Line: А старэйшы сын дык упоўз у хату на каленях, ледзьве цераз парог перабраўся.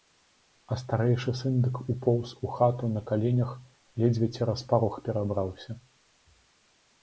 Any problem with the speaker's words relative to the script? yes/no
no